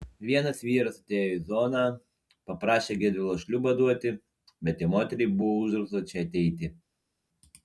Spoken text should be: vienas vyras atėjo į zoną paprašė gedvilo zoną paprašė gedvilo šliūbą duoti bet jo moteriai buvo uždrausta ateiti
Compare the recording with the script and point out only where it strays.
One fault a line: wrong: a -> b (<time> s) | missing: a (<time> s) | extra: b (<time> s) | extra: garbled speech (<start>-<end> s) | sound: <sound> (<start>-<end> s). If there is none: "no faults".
missing: zoną paprašė gedvilo (3.4 s)
extra: čia (6.1 s)